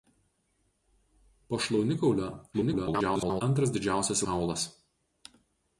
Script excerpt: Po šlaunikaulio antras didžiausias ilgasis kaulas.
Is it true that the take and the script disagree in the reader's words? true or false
true